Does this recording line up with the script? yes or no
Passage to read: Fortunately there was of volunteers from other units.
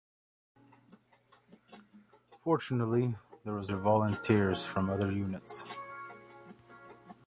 yes